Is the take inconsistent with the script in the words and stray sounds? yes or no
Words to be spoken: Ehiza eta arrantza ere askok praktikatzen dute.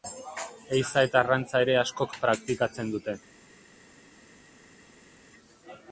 no